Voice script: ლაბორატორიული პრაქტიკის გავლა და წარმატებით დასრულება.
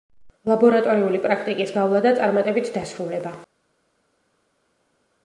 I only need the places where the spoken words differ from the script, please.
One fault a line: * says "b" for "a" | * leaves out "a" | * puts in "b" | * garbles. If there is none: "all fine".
all fine